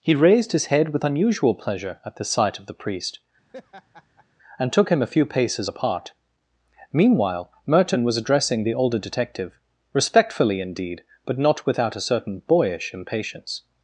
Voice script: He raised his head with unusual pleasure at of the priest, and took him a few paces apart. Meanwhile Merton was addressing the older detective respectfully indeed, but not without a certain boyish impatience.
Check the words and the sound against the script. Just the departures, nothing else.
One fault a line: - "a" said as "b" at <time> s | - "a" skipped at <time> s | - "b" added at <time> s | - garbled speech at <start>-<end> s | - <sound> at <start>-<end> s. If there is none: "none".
- "the sight" added at 2.1 s
- laugh at 3.5-4.3 s